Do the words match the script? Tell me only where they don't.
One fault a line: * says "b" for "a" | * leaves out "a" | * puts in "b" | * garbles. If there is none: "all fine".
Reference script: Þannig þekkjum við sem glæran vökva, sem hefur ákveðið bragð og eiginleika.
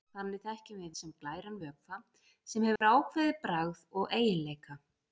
all fine